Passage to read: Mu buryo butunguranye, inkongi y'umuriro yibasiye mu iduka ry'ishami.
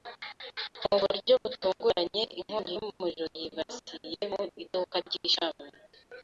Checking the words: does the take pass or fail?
pass